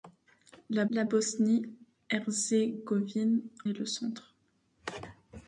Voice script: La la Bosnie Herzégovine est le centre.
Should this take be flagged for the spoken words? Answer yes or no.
no